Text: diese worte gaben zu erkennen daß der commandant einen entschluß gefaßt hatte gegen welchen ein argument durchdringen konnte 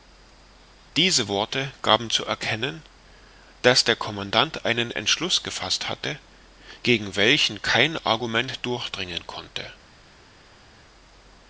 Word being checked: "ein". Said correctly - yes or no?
no